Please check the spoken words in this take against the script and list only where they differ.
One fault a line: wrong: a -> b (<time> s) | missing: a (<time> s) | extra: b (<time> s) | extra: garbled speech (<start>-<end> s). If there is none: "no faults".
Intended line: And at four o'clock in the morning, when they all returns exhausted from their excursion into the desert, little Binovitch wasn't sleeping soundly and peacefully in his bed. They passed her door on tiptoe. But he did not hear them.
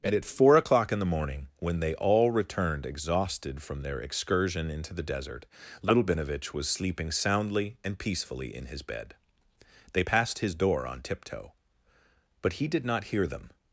wrong: returns -> returned (2.3 s)
wrong: wasn't -> was (6.5 s)
wrong: her -> his (10.4 s)